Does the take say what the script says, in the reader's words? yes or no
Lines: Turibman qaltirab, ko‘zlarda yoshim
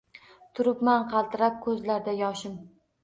yes